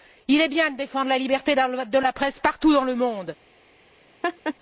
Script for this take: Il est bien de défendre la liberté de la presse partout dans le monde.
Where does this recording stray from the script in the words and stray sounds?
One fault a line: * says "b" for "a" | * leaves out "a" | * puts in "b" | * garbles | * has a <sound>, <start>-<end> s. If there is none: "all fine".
* has a laugh, 4.2-4.5 s